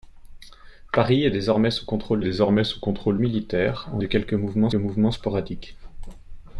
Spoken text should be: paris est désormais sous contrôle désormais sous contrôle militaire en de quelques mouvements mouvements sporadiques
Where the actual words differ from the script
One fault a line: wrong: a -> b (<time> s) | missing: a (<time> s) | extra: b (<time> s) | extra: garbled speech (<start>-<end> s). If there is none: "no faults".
no faults